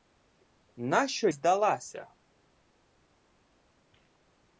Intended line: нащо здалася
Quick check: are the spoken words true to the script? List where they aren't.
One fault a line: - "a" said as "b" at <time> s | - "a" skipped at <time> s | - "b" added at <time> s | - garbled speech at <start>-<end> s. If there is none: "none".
none